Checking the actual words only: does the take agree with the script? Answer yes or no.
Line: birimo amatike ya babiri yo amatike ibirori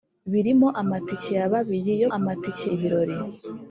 yes